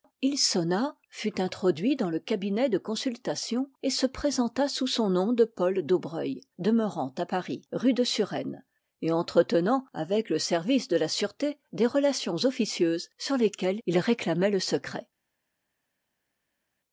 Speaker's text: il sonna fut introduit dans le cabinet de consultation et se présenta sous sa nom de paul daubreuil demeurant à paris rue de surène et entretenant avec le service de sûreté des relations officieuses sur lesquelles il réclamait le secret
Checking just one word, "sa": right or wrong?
wrong